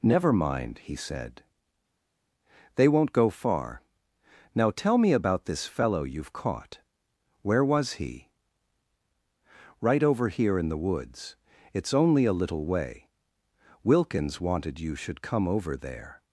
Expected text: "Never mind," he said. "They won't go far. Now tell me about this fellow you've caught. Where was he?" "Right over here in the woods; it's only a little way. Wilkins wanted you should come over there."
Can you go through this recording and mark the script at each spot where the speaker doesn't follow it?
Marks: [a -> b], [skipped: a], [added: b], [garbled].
"Never mind," he said. "They won't go far. Now tell me about this fellow you've caught. Where was he?" "Right over here in the woods; it's only a little way. Wilkins wanted you should come over there."